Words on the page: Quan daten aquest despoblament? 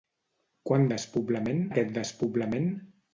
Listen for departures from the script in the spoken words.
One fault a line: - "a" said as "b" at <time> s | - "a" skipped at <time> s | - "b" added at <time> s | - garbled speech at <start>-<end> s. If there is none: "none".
- "daten" said as "despoblament" at 0.9 s